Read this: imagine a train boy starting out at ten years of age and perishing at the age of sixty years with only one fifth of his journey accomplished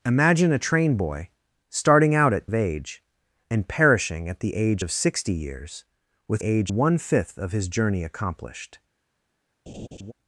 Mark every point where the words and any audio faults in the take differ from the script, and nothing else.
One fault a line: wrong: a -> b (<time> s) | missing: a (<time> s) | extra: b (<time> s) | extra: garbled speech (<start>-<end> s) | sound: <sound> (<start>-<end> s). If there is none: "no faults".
missing: ten years (2.5 s)
wrong: only -> age (6.4 s)
sound: laugh (9.7-10.1 s)